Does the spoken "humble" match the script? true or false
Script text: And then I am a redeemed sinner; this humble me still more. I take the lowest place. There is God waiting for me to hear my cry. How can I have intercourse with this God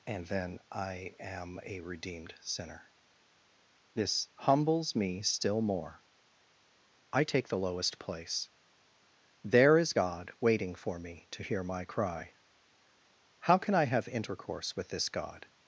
false